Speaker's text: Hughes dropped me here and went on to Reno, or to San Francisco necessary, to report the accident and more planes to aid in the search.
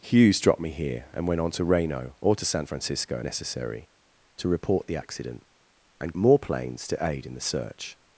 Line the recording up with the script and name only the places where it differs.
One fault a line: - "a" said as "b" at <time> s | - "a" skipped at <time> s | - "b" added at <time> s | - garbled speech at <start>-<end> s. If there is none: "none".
none